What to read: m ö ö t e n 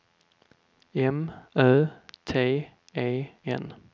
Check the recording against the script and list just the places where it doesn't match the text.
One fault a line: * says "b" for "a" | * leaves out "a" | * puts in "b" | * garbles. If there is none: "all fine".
* leaves out "ö"